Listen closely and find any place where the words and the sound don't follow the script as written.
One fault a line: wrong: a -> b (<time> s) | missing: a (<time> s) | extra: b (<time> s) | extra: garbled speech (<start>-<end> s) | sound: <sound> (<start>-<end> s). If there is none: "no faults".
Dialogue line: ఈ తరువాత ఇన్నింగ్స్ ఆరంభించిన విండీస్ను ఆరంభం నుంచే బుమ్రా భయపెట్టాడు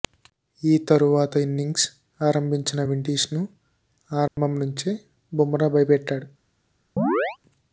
sound: dropout (4.3-4.4 s)
sound: chirp (7.0-7.4 s)